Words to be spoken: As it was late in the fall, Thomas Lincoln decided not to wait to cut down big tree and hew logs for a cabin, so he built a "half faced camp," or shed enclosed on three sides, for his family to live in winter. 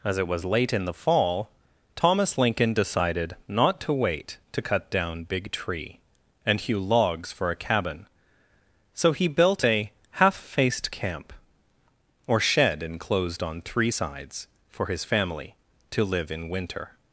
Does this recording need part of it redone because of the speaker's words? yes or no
no